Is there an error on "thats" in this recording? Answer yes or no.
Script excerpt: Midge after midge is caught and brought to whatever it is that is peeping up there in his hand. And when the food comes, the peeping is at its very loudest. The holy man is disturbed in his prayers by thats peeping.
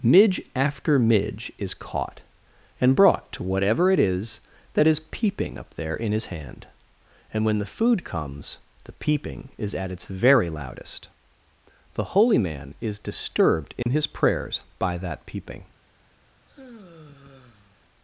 yes